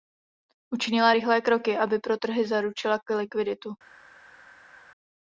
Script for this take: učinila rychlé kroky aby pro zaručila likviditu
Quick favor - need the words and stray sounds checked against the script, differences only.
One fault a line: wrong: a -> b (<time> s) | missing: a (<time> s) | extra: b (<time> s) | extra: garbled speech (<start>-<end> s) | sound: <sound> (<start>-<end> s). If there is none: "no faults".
extra: trhy (2.2 s)